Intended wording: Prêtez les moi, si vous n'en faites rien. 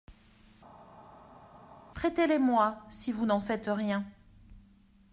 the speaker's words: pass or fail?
pass